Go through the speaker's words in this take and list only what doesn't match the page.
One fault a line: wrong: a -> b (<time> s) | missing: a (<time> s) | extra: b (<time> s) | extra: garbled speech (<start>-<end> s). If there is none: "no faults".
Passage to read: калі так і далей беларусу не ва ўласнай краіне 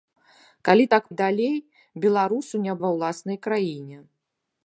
no faults